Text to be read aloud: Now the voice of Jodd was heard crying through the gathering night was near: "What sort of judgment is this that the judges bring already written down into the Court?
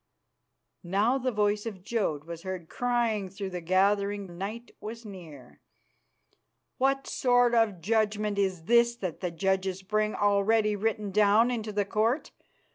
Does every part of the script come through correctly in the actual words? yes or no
yes